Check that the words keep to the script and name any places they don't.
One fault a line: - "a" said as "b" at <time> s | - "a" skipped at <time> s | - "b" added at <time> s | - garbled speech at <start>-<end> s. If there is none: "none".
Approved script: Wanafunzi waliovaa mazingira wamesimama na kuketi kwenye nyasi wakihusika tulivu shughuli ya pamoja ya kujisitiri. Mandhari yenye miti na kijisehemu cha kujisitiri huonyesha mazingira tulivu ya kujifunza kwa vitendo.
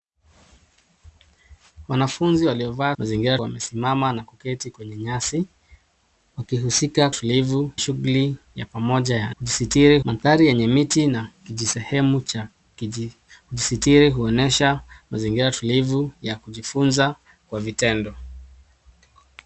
none